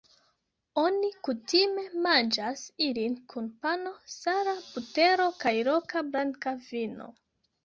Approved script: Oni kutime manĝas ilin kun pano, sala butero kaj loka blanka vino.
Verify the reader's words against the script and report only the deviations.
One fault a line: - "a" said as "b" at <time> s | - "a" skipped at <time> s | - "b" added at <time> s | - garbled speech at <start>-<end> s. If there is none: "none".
none